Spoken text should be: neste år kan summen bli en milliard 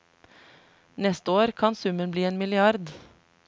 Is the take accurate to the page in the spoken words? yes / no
yes